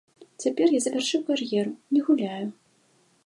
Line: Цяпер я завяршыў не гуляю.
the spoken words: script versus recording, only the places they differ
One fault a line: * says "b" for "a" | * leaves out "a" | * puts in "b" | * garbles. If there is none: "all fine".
* puts in "кар'еру"